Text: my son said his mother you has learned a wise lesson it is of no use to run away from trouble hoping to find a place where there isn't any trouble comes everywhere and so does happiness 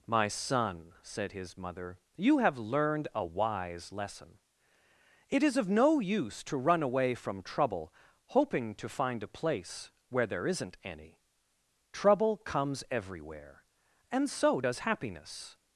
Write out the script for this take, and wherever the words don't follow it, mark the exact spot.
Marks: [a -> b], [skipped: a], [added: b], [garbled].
my son said his mother you [has -> have] learned a wise lesson it is of no use to run away from trouble hoping to find a place where there isn't any trouble comes everywhere and so does happiness